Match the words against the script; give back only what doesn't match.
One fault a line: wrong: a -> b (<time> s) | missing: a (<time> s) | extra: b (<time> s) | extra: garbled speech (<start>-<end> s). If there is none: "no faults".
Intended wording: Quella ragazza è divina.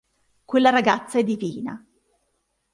no faults